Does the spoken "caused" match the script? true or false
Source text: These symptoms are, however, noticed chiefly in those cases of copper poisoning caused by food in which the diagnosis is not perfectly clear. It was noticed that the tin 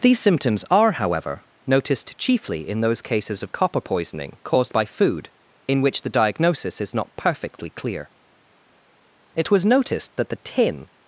true